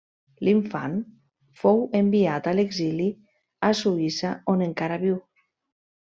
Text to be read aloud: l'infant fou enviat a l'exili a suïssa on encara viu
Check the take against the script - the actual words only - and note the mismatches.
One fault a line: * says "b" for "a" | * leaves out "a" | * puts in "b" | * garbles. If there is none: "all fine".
all fine